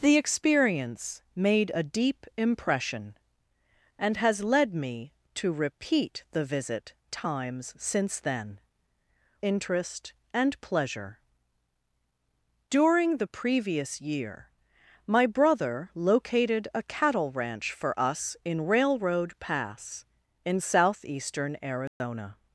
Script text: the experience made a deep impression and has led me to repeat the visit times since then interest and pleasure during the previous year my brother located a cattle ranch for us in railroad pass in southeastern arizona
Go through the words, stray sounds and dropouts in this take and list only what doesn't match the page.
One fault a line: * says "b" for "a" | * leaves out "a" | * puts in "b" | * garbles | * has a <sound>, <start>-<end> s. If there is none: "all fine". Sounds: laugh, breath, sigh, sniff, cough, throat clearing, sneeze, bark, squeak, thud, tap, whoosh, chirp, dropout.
* has a dropout, 21.9-22.0 s